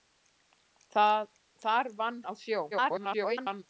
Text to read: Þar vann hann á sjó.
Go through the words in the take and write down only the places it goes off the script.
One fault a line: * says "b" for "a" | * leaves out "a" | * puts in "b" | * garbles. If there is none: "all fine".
* leaves out "hann"
* garbles